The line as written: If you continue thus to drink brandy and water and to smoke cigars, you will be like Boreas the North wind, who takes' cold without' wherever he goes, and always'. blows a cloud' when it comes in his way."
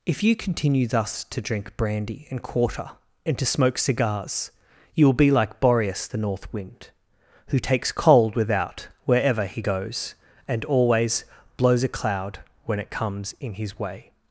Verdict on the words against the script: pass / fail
fail